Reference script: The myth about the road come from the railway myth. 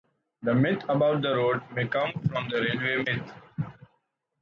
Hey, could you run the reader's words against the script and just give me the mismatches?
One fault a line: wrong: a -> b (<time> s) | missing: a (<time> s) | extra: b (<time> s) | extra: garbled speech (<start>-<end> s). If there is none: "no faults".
extra: may (1.8 s)